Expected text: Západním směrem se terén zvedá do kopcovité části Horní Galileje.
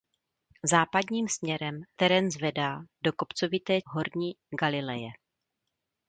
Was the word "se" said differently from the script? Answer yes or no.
yes